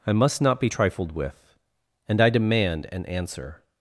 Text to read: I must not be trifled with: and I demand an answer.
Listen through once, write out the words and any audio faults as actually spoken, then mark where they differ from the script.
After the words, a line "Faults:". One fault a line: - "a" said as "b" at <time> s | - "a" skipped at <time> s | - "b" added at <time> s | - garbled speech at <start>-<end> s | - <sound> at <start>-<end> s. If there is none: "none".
I must not be trifled with: and I demand an answer.
Faults:
none